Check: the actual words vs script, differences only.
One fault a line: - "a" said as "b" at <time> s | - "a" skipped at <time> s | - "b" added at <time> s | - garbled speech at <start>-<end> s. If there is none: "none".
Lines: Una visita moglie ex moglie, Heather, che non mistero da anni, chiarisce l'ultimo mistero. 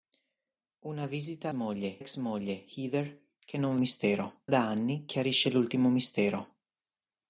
none